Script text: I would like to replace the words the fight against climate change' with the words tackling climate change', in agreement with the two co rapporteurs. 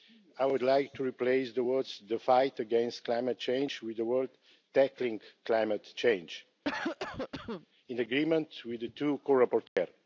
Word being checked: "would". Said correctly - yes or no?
yes